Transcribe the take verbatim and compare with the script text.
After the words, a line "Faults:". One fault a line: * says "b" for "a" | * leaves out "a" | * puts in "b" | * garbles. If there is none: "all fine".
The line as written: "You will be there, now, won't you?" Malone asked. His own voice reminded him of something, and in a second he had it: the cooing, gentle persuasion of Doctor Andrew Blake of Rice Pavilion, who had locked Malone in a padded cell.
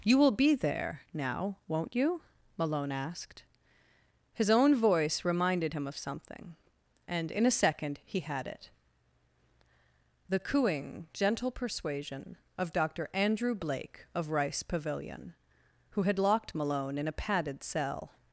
"You will be there, now, won't you?" Malone asked. His own voice reminded him of something, and in a second he had it: the cooing, gentle persuasion of Doctor Andrew Blake of Rice Pavilion, who had locked Malone in a padded cell.
Faults:
all fine